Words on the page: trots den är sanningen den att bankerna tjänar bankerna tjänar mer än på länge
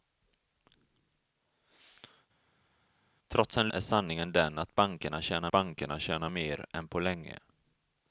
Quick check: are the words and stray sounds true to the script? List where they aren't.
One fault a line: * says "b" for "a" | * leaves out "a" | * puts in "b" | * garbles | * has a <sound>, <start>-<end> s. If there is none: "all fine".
all fine